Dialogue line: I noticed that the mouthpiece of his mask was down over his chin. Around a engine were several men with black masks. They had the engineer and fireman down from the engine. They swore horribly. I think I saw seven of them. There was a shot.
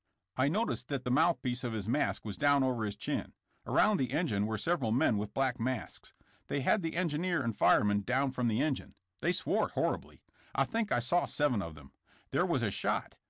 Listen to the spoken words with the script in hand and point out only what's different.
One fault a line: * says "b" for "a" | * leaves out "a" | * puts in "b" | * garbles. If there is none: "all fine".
* says "the" for "a"